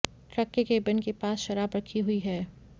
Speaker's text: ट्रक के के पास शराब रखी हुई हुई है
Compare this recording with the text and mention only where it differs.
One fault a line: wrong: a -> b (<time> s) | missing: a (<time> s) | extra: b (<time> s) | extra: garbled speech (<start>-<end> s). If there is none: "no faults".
extra: केबिन (0.6 s)
missing: हुई (2.2 s)